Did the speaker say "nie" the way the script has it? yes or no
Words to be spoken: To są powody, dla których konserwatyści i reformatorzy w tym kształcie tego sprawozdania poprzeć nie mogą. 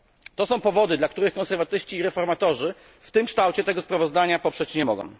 yes